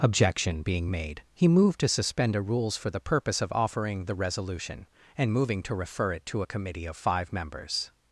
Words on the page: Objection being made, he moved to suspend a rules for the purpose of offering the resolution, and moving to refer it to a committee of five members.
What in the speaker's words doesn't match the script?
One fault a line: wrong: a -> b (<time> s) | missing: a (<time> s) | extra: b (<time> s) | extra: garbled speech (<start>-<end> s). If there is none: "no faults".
no faults